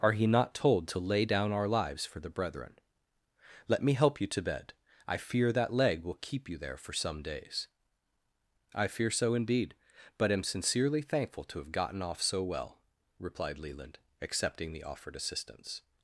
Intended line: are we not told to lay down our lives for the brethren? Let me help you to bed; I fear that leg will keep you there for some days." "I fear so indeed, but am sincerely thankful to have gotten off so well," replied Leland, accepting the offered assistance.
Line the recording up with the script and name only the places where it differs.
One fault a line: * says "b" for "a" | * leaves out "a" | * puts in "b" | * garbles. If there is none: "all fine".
* says "he" for "we"